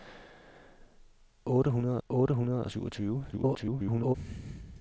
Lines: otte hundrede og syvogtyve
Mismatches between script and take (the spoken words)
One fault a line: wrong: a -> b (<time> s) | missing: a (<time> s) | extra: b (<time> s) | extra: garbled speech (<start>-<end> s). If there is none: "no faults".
extra: otte hundrede (2.1 s)
extra: garbled speech (3.3-4.2 s)